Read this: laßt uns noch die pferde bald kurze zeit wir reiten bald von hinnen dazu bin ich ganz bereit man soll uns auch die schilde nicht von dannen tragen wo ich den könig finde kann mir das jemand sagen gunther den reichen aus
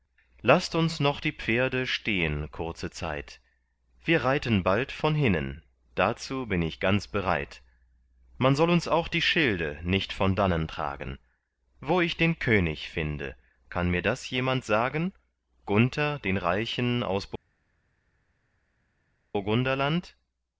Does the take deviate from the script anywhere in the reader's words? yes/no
yes